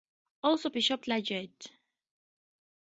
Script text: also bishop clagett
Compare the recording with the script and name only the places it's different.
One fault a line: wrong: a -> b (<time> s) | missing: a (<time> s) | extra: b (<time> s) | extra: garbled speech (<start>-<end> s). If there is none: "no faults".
no faults